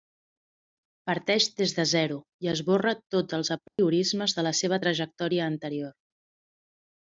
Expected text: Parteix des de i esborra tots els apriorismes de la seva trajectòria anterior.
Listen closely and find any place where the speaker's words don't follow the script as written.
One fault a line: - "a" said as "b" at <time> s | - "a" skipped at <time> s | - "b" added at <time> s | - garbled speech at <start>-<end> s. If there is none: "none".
- "zero" added at 1.9 s